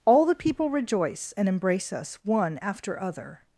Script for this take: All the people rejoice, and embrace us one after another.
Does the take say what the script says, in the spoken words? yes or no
no